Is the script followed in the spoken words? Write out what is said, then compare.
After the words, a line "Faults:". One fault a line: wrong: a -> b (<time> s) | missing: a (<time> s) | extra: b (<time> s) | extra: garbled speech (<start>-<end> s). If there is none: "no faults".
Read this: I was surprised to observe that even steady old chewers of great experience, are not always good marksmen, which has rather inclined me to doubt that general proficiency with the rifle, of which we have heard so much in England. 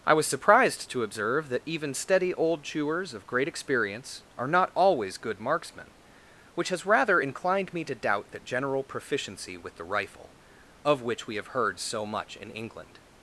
I was surprised to observe that even steady old chewers of great experience, are not always good marksmen, which has rather inclined me to doubt that general proficiency with the rifle, of which we have heard so much in England.
Faults:
no faults